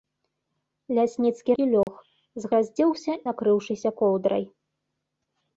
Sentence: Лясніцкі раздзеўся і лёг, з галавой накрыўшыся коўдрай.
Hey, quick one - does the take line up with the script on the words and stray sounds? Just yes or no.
no